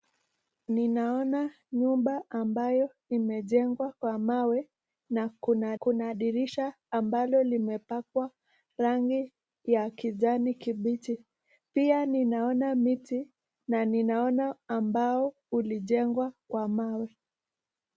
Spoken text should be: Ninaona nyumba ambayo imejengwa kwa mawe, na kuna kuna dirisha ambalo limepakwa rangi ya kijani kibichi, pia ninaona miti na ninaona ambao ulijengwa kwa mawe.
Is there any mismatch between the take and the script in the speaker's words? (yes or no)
no